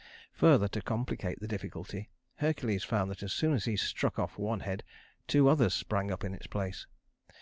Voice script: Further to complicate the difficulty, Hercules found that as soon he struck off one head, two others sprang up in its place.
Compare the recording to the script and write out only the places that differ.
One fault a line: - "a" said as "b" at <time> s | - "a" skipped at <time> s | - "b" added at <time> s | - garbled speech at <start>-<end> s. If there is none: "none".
- "as" added at 3.5 s